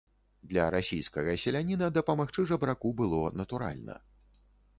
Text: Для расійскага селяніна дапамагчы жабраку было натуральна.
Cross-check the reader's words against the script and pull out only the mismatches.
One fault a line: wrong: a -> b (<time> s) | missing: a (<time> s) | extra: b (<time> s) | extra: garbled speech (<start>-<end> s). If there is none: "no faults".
no faults